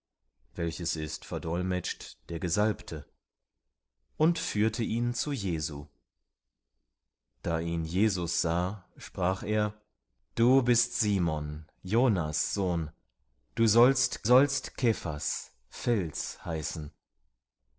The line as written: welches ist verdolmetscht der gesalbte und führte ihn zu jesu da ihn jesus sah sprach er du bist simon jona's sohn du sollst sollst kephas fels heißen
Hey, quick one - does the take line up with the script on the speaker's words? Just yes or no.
yes